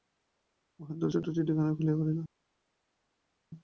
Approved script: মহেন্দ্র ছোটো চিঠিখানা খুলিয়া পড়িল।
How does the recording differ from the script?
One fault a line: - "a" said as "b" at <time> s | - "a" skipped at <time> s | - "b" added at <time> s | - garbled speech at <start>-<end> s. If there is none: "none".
none